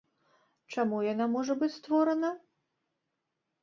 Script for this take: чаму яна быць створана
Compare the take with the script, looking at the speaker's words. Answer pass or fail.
fail